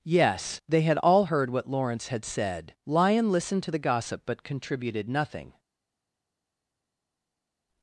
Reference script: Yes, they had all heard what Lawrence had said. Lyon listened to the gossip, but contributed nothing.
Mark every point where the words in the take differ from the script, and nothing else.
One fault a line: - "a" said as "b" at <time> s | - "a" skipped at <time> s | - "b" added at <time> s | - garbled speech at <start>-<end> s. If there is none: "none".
none